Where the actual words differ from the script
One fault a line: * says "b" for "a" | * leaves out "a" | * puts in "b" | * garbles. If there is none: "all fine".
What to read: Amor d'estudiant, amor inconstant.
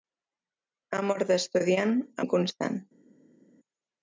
* leaves out "amor"